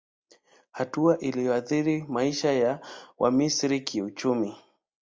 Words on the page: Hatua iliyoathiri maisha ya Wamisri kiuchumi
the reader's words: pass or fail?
pass